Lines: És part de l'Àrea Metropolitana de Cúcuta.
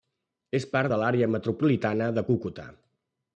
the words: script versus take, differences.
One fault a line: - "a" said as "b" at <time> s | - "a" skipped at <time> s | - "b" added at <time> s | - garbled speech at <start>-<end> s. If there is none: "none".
none